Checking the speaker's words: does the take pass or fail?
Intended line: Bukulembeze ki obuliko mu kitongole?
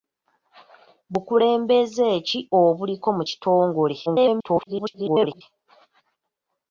fail